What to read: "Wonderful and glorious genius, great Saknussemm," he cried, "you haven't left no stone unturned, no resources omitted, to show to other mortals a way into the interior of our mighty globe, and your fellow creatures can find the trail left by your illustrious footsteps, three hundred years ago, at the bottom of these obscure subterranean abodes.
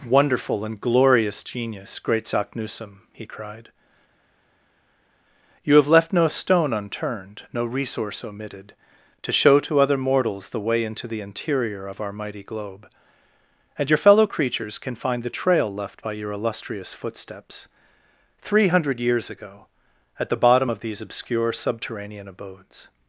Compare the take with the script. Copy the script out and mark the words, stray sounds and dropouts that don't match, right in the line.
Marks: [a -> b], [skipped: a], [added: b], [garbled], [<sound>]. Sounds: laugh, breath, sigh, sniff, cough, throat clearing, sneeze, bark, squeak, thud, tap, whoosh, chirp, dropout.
"Wonderful and glorious genius, great Saknussemm," he cried, "you [haven't -> have] left no stone unturned, no [resources -> resource] omitted, to show to other mortals [a -> the] way into the interior of our mighty globe, and your fellow creatures can find the trail left by your illustrious footsteps, three hundred years ago, at the bottom of these obscure subterranean abodes.